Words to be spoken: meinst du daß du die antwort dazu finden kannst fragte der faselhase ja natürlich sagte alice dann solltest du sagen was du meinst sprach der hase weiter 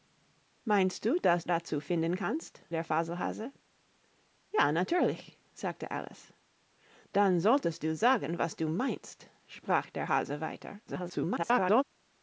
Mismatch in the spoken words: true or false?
true